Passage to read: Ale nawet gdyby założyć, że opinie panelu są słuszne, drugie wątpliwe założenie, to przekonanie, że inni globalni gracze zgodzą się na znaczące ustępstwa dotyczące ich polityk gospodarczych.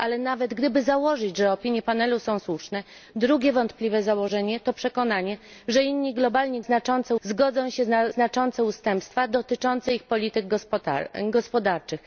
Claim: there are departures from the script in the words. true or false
true